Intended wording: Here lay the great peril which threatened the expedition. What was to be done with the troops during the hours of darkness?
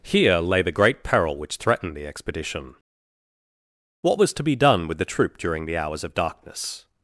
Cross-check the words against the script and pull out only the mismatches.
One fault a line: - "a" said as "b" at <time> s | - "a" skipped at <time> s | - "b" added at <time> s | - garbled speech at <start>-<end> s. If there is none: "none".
- "troops" said as "troop" at 5.0 s